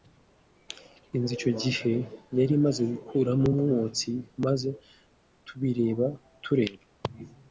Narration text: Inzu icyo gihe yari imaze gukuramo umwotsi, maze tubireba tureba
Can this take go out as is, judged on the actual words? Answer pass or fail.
pass